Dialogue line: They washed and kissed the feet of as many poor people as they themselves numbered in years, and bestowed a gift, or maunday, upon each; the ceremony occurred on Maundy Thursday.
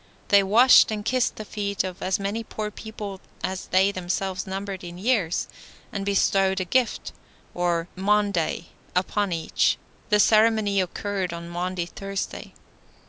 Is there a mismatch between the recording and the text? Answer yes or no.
no